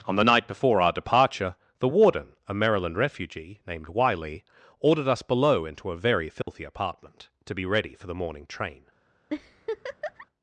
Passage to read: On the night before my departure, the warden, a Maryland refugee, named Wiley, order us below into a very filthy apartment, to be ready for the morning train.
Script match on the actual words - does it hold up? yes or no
no